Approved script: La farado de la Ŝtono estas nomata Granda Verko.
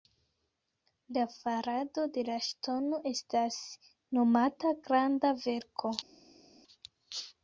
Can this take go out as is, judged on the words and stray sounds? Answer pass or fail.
pass